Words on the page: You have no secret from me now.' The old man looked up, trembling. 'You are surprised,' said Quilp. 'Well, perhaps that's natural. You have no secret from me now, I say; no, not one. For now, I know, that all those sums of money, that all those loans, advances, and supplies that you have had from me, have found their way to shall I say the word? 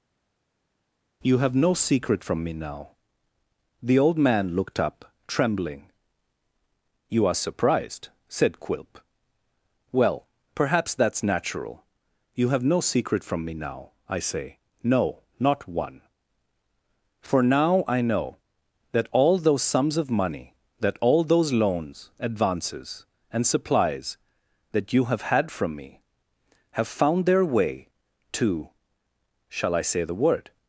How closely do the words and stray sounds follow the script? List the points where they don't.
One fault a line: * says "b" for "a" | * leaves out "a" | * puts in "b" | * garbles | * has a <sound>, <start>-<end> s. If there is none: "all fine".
all fine